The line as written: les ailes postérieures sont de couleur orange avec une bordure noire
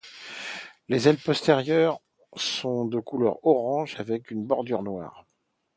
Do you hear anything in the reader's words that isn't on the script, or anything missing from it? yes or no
no